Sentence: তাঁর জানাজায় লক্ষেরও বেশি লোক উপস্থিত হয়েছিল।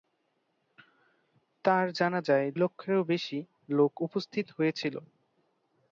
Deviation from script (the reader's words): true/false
false